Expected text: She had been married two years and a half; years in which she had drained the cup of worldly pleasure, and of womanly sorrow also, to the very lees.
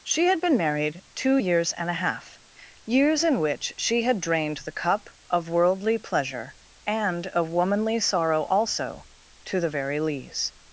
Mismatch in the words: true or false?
false